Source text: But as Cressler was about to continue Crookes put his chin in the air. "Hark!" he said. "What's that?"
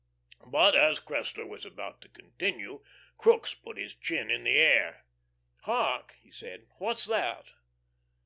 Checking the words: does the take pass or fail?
pass